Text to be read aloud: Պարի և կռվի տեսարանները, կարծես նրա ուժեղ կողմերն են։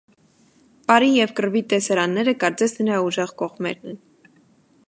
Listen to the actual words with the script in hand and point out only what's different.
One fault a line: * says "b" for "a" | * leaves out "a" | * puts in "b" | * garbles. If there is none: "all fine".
all fine